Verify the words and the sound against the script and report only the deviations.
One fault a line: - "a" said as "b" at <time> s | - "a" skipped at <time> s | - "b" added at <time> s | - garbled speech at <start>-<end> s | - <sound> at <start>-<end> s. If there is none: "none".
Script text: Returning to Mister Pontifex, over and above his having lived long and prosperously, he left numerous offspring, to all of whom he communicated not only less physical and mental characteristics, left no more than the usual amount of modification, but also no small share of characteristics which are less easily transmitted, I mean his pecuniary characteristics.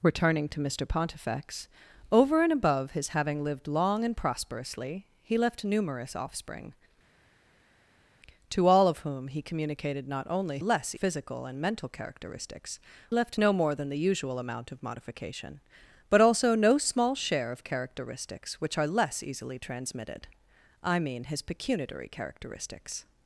none